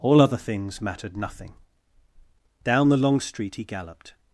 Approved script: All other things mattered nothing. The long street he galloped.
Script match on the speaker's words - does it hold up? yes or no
no